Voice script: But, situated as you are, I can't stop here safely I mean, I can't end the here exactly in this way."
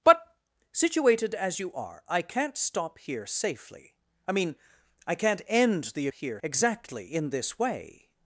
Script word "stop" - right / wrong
right